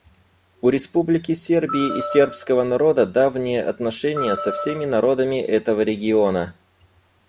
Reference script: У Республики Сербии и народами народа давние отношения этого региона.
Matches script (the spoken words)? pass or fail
fail